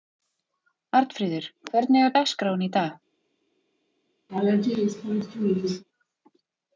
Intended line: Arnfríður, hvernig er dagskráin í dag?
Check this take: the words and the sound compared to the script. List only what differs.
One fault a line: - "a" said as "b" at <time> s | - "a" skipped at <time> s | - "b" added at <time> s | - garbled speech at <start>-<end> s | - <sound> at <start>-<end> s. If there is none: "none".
- laugh at 4.3-5.8 s